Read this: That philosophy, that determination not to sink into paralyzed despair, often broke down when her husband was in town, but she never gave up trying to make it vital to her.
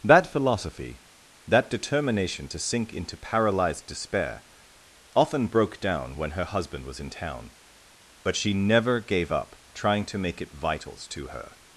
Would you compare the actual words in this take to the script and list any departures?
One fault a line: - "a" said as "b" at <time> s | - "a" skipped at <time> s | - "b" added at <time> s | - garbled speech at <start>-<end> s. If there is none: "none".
- "not" skipped at 2.5 s
- "vital" said as "vitals" at 10.5 s